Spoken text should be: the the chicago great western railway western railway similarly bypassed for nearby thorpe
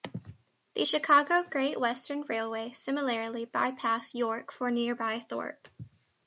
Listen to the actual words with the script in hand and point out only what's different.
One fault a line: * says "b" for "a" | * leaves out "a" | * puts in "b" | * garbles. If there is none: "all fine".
* leaves out "the"
* leaves out "western railway"
* puts in "york"